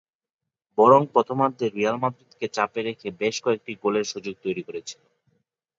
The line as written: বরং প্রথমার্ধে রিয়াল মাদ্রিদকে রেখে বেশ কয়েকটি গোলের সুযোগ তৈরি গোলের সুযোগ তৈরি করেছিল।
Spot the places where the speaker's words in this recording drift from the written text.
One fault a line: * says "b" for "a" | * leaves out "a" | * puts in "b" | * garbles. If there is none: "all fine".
* puts in "চাপে"
* leaves out "গোলের সুযোগ তৈরি"